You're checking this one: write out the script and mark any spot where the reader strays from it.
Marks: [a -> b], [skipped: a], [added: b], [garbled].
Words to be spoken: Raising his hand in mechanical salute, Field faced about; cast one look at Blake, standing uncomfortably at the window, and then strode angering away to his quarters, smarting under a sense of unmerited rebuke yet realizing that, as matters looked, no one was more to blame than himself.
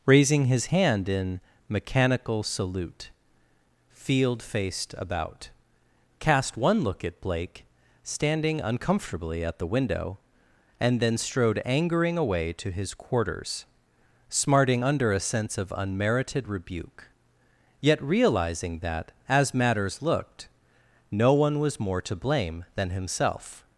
Raising his hand in mechanical salute, Field faced about; cast one look at Blake, standing uncomfortably at the window, and then strode angering away to his quarters, smarting under a sense of unmerited rebuke yet realizing that, as matters looked, no one was more to blame than himself.